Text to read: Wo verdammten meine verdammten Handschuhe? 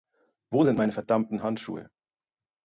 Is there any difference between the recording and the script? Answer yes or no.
yes